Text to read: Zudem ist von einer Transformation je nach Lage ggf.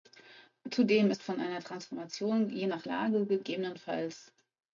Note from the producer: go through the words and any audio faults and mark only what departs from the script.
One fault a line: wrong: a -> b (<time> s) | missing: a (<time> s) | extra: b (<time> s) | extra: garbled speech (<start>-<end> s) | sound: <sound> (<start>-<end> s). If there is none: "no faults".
no faults